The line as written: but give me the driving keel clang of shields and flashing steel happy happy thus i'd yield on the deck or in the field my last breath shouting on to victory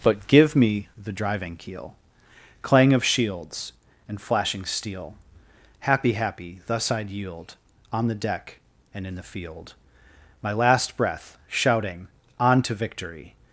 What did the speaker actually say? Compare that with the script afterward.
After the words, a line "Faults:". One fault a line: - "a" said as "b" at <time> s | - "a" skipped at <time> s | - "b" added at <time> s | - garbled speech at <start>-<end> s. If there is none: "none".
but give me the driving keel clang of shields and flashing steel happy happy thus i'd yield on the deck and in the field my last breath shouting on to victory
Faults:
- "or" said as "and" at 8.9 s